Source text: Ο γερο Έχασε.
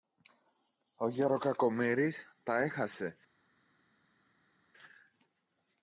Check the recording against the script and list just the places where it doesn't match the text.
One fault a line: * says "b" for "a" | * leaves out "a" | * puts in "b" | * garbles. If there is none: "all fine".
* puts in "Κακομοίρης τα"